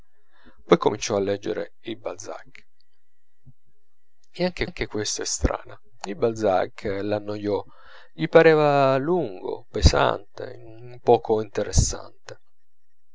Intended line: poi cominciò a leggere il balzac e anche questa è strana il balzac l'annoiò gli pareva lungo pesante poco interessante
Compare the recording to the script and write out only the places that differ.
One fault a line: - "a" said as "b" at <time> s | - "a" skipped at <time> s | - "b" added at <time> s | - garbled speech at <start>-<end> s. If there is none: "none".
- "anche" added at 4.6 s